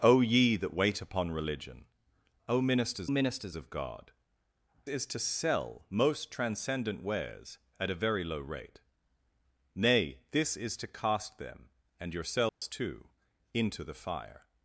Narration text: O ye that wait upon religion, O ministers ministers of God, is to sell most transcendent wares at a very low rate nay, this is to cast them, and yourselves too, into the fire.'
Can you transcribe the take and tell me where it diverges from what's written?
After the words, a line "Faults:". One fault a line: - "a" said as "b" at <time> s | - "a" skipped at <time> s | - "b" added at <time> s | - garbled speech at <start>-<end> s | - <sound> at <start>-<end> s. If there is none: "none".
O ye that wait upon religion, O ministers ministers of God, is to sell most transcendent wares at a very low rate nay, this is to cast them, and yourselves too, into the fire.'
Faults:
- dropout at 12.5-12.6 s